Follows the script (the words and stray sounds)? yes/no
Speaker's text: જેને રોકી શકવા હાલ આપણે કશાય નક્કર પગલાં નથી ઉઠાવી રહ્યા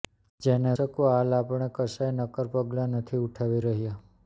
no